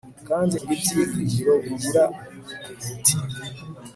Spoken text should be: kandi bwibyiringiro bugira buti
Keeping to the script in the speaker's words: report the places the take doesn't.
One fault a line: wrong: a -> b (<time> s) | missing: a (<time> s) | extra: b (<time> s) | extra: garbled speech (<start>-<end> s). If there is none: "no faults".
no faults